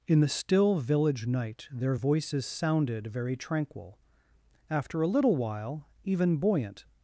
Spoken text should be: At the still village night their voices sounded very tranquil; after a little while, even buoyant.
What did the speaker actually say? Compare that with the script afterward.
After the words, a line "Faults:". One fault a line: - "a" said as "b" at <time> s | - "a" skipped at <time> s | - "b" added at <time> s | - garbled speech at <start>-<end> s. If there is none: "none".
In the still village night their voices sounded very tranquil; after a little while, even buoyant.
Faults:
- "At" said as "In" at 0.1 s